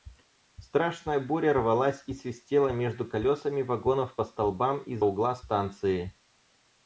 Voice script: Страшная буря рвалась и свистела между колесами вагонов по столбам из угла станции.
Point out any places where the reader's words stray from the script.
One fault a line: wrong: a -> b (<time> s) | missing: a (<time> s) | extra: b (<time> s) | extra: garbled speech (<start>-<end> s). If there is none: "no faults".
no faults